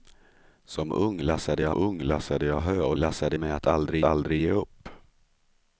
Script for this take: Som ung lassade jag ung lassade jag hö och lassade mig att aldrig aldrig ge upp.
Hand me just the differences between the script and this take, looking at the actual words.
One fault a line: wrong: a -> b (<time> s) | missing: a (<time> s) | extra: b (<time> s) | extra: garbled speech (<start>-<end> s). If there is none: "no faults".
no faults